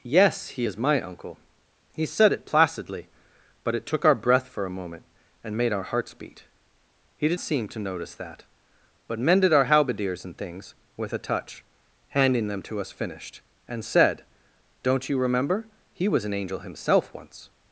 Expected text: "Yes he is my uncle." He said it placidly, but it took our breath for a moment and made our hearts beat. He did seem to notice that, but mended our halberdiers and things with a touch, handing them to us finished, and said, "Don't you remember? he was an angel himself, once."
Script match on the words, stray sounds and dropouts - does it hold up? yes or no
yes